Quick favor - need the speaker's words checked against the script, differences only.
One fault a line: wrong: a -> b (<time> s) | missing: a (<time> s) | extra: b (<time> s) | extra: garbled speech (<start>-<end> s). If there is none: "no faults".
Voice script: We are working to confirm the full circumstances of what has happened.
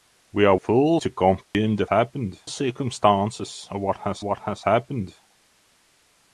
wrong: working -> full (0.5 s)
wrong: full -> happened (1.9 s)
extra: what has (4.2 s)